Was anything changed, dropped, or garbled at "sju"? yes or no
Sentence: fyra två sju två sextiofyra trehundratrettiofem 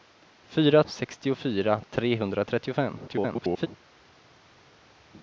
yes